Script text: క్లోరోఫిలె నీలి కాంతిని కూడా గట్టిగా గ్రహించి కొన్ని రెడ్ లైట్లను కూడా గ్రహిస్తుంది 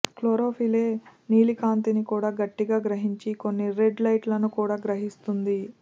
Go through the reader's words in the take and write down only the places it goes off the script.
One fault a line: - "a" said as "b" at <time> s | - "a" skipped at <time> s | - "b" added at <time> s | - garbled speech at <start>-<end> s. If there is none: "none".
none